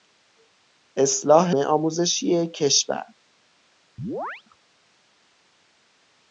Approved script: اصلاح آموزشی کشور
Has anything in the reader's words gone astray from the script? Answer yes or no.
no